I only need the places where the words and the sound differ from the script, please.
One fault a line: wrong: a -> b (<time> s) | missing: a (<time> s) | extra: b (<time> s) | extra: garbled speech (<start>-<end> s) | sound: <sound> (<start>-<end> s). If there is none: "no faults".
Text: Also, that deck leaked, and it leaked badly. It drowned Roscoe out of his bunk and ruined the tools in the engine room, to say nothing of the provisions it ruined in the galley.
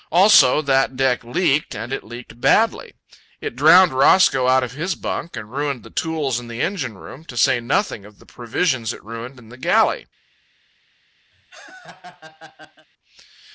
sound: laugh (11.3-12.9 s)